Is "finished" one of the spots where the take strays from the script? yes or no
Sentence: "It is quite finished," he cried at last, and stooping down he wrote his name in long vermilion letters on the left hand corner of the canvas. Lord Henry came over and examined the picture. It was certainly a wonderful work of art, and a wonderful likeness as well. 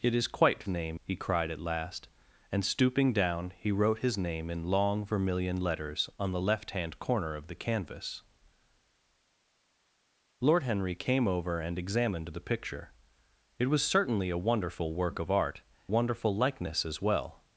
yes